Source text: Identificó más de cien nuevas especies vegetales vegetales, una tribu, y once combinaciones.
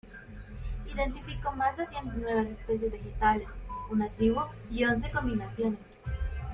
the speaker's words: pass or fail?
fail